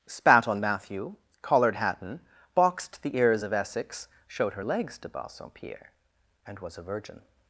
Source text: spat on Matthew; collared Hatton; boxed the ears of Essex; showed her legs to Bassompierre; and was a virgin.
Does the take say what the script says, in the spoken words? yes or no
yes